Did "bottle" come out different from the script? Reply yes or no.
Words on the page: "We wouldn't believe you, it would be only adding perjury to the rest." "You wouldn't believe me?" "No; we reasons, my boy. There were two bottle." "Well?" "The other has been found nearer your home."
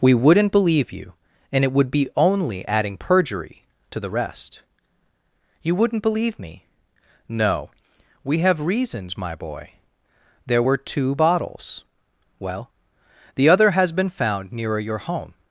yes